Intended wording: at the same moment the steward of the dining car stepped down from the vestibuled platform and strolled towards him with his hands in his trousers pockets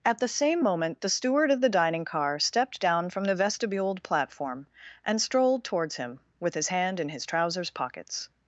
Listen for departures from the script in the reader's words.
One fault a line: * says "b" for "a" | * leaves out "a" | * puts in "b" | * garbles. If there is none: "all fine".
* says "hand" for "hands"